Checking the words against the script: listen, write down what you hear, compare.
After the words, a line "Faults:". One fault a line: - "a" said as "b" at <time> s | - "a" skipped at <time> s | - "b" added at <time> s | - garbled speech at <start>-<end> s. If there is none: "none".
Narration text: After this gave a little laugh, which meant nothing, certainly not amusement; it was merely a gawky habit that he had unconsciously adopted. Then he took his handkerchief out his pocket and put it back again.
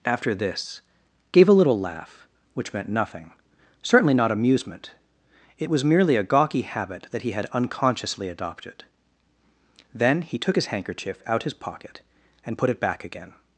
After this gave a little laugh, which meant nothing, certainly not amusement; it was merely a gawky habit that he had unconsciously adopted. Then he took his handkerchief out his pocket and put it back again.
Faults:
none